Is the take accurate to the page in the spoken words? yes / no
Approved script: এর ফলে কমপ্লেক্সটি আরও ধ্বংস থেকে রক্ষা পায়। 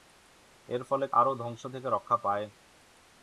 no